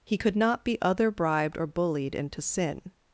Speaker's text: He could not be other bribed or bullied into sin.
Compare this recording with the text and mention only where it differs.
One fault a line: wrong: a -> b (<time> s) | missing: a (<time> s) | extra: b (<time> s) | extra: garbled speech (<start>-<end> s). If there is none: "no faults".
no faults